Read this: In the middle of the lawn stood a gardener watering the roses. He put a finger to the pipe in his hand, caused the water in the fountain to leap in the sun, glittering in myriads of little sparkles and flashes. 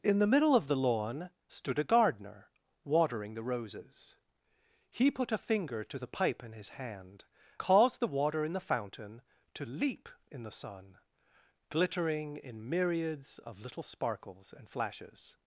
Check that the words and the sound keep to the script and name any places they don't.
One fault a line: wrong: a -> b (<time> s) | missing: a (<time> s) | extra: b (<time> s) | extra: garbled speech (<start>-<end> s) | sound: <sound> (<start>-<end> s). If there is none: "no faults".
no faults